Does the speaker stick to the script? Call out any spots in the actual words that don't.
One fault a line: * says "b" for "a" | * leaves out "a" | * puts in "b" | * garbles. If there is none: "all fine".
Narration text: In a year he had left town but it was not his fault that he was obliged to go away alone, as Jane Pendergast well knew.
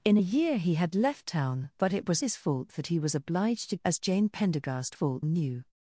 * leaves out "not"
* leaves out "go away alone"
* says "fault" for "well"